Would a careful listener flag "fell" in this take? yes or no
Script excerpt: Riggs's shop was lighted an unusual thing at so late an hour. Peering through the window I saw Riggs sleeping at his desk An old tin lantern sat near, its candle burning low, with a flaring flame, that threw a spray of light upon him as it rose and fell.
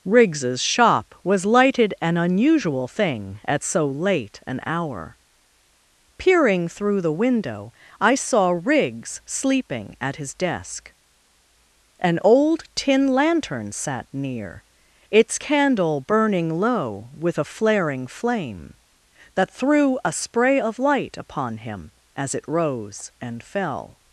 no